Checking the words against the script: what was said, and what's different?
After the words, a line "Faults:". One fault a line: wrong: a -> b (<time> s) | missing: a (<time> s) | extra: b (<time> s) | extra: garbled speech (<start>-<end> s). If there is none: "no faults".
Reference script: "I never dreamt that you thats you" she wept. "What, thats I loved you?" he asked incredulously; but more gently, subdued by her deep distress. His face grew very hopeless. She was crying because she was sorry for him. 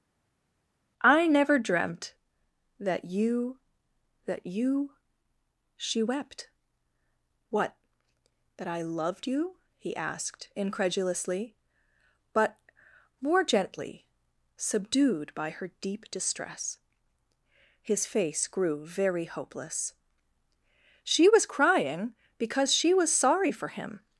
"I never dreamt that you that you" she wept. "What, that I loved you?" he asked incredulously; but more gently, subdued by her deep distress. His face grew very hopeless. She was crying because she was sorry for him.
Faults:
wrong: thats -> that (4.2 s)
wrong: thats -> that (8.6 s)